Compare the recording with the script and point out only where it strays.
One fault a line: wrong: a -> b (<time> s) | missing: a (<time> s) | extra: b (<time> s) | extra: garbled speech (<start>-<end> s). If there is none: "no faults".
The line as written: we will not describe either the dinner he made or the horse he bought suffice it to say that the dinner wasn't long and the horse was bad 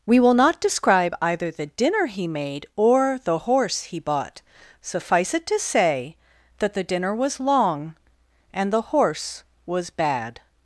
wrong: wasn't -> was (7.2 s)